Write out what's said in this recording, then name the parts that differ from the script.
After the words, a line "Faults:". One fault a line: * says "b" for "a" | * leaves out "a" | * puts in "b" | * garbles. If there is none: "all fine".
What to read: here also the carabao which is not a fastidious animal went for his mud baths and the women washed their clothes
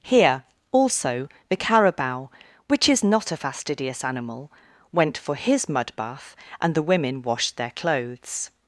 here also the carabao which is not a fastidious animal went for his mud bath and the women washed their clothes
Faults:
* says "bath" for "baths"